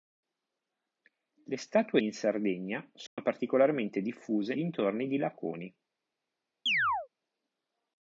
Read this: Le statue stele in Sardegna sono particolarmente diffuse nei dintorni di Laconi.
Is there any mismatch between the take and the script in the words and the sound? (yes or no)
yes